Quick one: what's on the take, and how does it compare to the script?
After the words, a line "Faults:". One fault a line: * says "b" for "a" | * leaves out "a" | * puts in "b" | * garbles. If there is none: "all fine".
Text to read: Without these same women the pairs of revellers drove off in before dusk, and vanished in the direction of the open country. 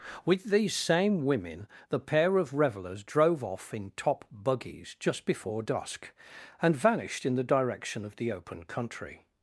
With these same women the pair of revellers drove off in top buggies just before dusk, and vanished in the direction of the open country.
Faults:
* says "With" for "Without"
* says "pair" for "pairs"
* puts in "top buggies just"